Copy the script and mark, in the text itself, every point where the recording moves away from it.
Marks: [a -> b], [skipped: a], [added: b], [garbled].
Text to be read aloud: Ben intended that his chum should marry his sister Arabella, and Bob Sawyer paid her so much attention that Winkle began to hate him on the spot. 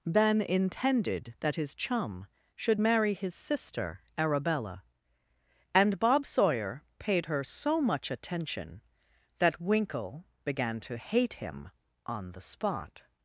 Ben intended that his chum should marry his sister Arabella, and Bob Sawyer paid her so much attention that Winkle began to hate him on the spot.